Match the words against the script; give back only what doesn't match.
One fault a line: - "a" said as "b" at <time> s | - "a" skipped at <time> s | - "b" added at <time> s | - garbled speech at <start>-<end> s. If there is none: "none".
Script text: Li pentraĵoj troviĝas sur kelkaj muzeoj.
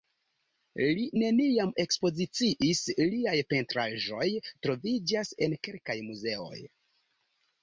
- "neniam ekspoziciis liaj" added at 1.2 s
- "sur" said as "en" at 5.5 s